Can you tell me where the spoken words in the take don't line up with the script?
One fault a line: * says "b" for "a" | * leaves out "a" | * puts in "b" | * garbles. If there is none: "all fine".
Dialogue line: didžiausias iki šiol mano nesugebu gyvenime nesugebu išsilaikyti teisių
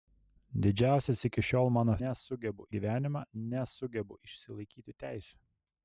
all fine